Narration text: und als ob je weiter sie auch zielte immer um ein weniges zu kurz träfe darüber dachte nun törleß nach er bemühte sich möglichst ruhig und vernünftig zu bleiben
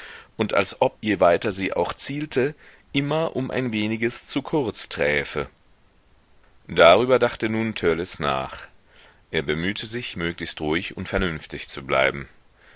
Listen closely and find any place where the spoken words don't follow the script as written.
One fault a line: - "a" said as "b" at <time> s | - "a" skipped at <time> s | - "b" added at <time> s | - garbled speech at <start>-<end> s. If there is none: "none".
none